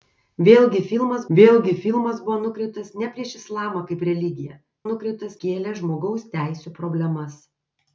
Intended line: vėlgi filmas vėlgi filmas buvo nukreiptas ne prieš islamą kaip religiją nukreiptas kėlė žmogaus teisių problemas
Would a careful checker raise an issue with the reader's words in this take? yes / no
no